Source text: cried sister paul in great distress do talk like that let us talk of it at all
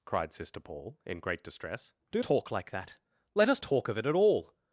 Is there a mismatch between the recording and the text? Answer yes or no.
no